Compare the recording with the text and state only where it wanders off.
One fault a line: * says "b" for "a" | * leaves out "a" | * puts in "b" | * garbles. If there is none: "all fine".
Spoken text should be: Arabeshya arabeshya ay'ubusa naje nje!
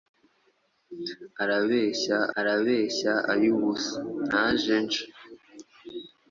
all fine